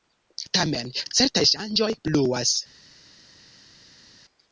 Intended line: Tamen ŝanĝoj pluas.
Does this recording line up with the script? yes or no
no